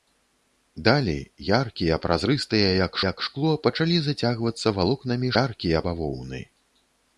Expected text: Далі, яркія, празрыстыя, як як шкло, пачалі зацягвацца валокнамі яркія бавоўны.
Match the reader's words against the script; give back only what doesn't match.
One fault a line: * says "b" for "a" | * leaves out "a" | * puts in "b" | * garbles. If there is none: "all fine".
all fine